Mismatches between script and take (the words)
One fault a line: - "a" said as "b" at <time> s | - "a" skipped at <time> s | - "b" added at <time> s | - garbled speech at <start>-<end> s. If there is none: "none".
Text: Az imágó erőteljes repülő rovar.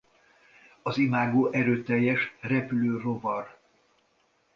none